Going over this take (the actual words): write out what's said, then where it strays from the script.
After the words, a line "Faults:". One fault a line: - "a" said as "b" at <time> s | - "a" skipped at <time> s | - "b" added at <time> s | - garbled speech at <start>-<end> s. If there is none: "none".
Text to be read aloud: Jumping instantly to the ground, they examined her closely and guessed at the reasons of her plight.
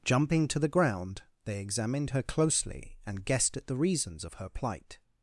Jumping to the ground, they examined her closely and guessed at the reasons of her plight.
Faults:
- "instantly" skipped at 0.5 s